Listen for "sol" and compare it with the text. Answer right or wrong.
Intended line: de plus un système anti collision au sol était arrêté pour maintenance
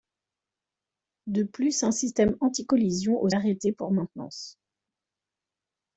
wrong